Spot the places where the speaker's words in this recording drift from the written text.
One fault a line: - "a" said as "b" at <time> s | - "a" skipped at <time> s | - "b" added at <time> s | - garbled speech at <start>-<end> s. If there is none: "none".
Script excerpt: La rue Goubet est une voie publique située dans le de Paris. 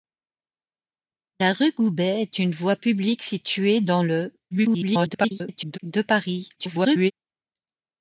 - garbled speech at 4.5-5.8 s
- garbled speech at 6.6-7.1 s